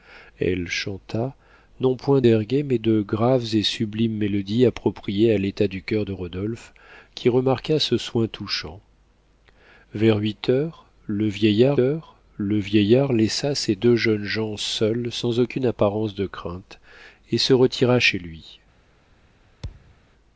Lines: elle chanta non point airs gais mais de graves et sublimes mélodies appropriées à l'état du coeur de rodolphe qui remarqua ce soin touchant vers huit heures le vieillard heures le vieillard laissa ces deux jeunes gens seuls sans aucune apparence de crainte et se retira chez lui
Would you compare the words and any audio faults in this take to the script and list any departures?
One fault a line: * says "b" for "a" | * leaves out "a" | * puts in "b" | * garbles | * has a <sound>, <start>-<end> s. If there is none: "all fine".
* has a thud, 19.6-20.0 s